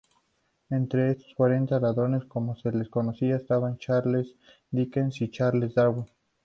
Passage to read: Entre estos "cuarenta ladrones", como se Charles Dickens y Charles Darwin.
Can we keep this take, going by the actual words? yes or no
no